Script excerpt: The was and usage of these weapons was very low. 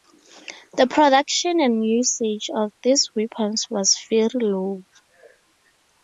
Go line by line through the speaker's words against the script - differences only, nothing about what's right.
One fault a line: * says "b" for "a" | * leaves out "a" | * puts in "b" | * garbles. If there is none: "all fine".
* says "production" for "was"